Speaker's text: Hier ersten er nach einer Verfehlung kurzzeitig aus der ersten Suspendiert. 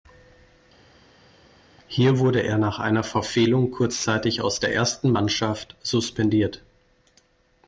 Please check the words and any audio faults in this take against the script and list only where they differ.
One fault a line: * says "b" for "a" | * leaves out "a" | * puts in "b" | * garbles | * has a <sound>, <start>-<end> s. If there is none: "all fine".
* says "wurde" for "ersten"
* puts in "Mannschaft"